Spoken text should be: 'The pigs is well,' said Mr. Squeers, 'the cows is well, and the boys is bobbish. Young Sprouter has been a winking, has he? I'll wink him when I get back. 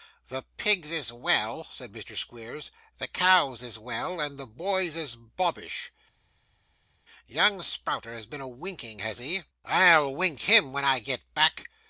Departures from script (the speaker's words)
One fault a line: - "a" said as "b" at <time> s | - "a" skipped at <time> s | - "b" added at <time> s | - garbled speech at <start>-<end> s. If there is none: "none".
none